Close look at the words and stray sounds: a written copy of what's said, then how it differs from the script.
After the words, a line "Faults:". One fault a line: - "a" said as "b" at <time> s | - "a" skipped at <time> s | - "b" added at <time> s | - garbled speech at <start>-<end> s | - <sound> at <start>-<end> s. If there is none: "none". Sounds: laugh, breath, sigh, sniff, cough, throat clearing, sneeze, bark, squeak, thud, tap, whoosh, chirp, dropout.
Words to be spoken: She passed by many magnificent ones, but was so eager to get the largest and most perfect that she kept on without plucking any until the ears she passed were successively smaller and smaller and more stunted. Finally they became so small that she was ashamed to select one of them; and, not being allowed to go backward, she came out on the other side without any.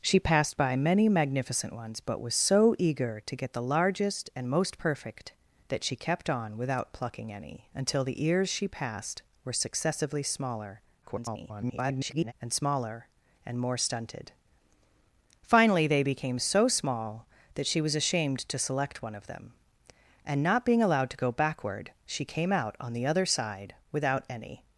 She passed by many magnificent ones, but was so eager to get the largest and most perfect that she kept on without plucking any until the ears she passed were successively smaller [garbled] and smaller and more stunted. Finally they became so small that she was ashamed to select one of them; and, not being allowed to go backward, she came out on the other side without any.
Faults:
- garbled speech at 11.0-12.3 s